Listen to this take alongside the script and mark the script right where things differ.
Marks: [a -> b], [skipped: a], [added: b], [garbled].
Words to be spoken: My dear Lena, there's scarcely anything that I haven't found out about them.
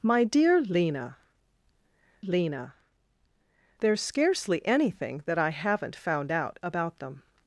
My dear Lena, [added: Lena] there's scarcely anything that I haven't found out about them.